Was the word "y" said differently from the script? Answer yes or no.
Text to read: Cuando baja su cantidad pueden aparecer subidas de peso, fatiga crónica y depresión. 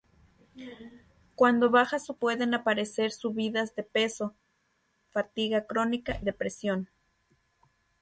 yes